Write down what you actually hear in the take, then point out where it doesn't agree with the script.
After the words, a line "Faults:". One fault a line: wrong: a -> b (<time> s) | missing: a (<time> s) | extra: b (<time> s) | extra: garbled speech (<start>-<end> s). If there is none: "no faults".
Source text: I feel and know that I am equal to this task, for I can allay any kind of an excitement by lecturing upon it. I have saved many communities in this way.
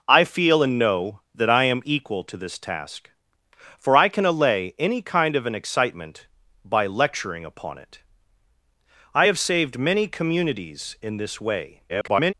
I feel and know that I am equal to this task, for I can allay any kind of an excitement by lecturing upon it. I have saved many communities in this way. [garbled]
Faults:
extra: garbled speech (11.9-12.3 s)